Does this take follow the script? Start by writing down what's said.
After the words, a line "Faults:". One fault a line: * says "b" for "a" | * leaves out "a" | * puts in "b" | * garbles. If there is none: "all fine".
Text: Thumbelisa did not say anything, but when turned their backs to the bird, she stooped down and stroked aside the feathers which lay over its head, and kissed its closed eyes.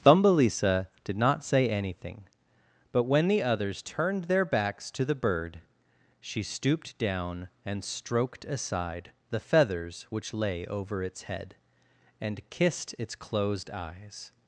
Thumbelisa did not say anything, but when the others turned their backs to the bird, she stooped down and stroked aside the feathers which lay over its head, and kissed its closed eyes.
Faults:
* puts in "the others"